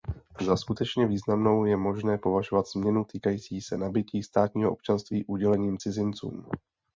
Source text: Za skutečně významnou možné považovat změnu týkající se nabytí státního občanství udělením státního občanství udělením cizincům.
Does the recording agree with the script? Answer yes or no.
no